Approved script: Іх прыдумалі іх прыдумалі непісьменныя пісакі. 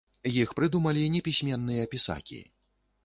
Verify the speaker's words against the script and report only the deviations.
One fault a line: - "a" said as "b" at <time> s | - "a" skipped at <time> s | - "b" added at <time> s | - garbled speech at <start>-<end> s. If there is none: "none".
- "іх прыдумалі" skipped at 1.0 s